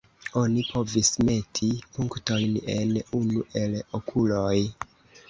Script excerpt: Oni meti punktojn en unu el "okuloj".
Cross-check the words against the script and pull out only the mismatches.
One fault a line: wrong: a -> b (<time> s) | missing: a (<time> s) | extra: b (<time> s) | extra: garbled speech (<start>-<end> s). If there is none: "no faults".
extra: povis (0.7 s)